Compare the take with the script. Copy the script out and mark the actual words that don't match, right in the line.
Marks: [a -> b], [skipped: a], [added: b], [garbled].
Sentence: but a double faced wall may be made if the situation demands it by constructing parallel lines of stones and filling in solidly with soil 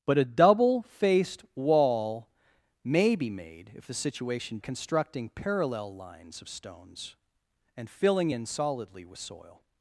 but a double faced wall may be made if the situation [skipped: demands it by] constructing parallel lines of stones and filling in solidly with soil